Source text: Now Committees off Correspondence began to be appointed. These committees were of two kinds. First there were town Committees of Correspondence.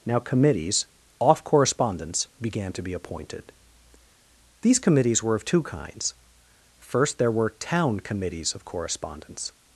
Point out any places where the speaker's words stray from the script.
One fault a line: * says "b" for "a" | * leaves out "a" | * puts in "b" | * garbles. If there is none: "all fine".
all fine